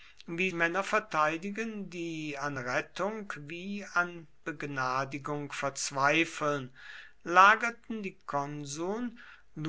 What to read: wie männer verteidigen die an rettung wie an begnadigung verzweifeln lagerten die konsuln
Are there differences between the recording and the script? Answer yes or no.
no